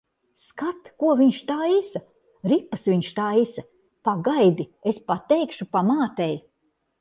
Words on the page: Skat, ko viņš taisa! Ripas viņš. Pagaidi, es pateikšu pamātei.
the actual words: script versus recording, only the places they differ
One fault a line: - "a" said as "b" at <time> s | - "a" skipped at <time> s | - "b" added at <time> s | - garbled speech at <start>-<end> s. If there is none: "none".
- "taisa" added at 3.2 s